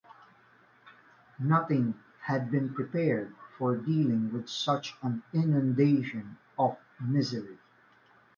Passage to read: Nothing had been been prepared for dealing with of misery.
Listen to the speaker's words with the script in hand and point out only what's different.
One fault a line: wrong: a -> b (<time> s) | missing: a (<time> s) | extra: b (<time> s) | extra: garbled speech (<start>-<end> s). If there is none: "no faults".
missing: been (2.7 s)
extra: such an inundation (4.5 s)